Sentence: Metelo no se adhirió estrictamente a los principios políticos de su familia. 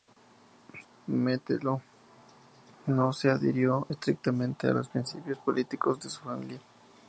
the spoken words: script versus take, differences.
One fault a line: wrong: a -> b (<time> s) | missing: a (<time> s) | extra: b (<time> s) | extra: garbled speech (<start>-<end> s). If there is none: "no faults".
no faults